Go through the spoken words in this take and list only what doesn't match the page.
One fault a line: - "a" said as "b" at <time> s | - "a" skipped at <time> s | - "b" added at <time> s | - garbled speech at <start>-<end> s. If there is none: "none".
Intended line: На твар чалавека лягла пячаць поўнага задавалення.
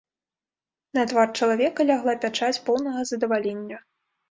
none